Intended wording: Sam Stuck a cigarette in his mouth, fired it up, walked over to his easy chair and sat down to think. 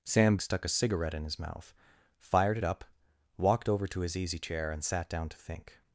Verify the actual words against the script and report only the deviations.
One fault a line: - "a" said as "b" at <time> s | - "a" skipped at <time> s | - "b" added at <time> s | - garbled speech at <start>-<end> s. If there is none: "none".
none